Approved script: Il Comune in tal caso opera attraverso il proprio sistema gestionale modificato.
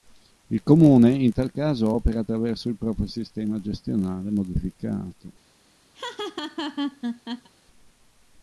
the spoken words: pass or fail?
pass